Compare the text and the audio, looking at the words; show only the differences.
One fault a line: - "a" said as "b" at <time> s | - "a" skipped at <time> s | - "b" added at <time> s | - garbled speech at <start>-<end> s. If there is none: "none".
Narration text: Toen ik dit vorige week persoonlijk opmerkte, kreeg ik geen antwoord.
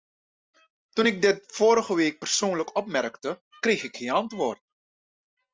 none